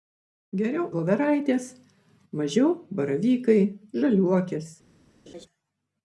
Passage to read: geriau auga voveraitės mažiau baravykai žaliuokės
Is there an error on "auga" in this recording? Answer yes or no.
yes